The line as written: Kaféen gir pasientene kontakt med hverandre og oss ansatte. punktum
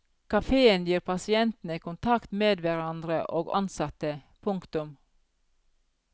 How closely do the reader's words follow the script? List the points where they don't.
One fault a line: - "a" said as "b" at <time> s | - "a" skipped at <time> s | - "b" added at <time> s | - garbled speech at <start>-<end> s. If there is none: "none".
- "oss" skipped at 3.5 s